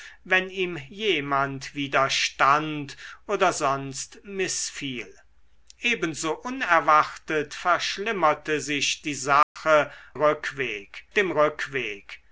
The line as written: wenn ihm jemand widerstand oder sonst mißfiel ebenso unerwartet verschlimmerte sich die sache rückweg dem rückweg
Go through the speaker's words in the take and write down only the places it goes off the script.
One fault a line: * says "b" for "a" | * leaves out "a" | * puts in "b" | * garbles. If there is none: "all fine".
all fine